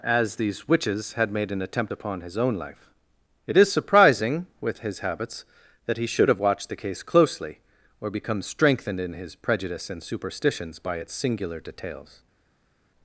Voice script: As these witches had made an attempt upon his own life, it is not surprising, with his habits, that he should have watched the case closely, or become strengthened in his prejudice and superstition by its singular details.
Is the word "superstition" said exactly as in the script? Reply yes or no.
no